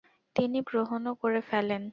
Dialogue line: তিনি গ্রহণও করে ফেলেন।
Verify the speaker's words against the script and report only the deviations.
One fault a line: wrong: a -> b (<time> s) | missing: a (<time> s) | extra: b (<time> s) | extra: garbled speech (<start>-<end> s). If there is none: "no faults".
no faults